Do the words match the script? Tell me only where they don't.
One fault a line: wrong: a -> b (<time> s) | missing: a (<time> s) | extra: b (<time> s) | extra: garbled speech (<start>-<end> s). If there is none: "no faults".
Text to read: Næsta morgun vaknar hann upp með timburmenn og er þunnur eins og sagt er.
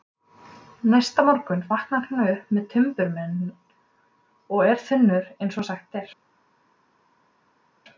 no faults